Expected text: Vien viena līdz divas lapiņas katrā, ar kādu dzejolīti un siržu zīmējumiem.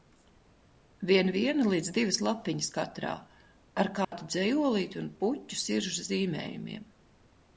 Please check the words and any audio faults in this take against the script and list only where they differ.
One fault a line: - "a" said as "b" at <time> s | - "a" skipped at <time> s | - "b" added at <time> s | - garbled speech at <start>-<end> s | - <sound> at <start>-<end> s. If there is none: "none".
- dropout at 4.0-4.1 s
- "puķu" added at 5.2 s